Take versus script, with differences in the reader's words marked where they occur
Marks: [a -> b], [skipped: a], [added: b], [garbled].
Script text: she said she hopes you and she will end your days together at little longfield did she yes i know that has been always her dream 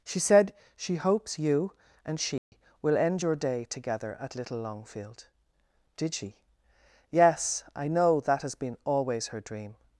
she said she hopes you and she will end your [days -> day] together at little longfield did she yes i know that has been always her dream